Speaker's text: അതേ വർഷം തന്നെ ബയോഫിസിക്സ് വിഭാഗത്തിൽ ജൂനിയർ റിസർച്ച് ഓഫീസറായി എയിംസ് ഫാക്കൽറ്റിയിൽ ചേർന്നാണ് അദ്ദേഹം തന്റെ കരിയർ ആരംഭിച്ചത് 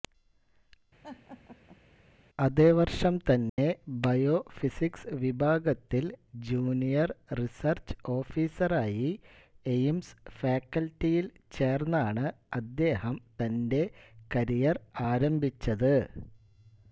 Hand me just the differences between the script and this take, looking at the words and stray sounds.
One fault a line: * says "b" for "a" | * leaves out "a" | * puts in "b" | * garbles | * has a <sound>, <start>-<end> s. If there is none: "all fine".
* has a laugh, 1.0-1.8 s
* has a dropout, 3.5-3.6 s